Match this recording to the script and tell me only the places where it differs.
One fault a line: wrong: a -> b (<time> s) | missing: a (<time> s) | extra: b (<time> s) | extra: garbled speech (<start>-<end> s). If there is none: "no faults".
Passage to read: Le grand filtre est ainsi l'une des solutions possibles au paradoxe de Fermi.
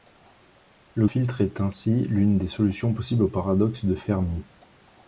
missing: grand (1.1 s)